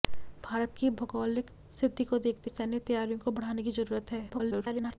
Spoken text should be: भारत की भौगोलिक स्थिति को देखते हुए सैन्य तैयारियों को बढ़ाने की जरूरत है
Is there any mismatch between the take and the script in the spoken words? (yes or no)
yes